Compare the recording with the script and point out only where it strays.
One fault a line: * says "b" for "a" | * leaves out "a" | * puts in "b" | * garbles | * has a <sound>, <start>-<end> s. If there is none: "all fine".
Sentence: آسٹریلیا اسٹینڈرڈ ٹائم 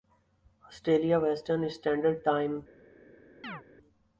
* puts in "ویسٹرن"
* has a chirp, 3.4-3.6 s